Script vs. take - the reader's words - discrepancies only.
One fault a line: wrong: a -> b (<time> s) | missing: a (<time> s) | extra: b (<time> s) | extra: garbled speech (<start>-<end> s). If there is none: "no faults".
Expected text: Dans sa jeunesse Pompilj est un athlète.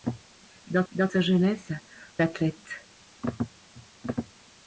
extra: dans (0.9 s)
missing: Pompilj est un (1.7 s)